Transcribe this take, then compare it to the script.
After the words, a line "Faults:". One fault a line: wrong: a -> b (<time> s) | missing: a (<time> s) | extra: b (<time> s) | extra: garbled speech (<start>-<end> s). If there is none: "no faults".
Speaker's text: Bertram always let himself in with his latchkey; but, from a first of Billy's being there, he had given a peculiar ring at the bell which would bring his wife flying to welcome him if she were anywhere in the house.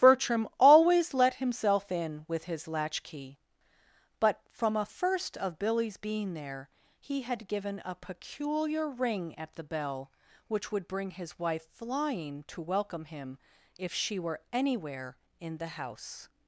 Bertram always let himself in with his latchkey; but, from a first of Billy's being there, he had given a peculiar ring at the bell which would bring his wife flying to welcome him if she were anywhere in the house.
Faults:
no faults